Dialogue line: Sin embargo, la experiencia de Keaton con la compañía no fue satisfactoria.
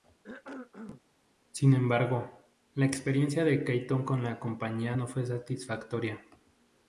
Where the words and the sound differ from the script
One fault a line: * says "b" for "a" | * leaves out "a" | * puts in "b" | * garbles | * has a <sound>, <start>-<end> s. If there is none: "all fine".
* has a cough, 0.2-1.0 s